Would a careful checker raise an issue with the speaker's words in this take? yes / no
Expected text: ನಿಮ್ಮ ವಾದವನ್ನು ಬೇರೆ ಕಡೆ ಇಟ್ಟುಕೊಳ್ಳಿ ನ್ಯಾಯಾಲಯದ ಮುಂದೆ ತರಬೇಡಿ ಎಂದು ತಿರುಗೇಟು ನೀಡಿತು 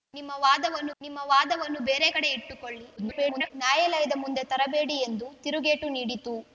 yes